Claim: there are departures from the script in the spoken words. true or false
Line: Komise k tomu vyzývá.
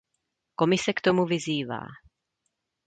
false